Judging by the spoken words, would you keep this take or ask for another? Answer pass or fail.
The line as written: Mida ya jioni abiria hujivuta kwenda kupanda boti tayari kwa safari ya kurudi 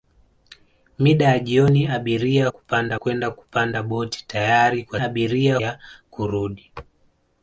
fail